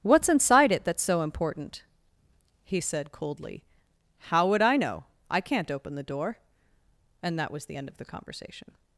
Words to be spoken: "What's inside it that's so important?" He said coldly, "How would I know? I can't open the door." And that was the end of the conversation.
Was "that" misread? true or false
false